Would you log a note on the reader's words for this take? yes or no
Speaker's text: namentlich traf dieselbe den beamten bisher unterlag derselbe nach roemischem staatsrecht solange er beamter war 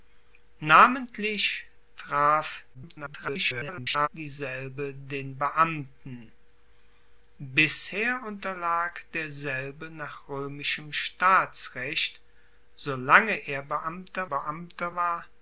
yes